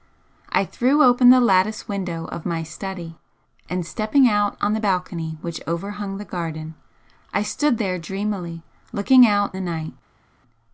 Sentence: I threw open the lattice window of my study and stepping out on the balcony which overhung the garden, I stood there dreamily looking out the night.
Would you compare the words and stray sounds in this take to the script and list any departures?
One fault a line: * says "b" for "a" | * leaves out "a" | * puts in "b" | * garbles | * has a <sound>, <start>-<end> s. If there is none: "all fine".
all fine